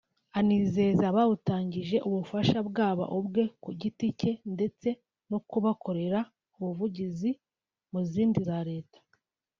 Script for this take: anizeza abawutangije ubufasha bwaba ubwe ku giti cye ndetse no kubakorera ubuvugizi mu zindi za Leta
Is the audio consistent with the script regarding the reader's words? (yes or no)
yes